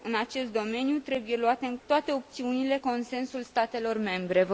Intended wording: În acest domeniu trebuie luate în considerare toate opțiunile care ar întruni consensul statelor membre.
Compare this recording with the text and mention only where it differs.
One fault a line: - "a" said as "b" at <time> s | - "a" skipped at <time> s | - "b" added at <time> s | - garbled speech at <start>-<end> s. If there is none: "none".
- "considerare" skipped at 1.8 s
- "care ar întruni" skipped at 2.8 s